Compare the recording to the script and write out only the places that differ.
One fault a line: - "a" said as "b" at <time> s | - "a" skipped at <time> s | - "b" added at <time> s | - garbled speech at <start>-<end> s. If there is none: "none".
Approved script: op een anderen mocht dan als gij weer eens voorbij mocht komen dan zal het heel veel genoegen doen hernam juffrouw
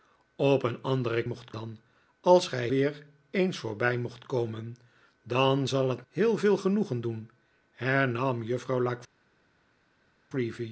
none